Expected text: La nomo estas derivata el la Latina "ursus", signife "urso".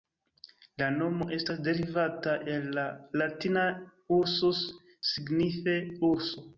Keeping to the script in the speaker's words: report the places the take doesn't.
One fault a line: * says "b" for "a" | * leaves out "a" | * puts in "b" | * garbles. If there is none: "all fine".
all fine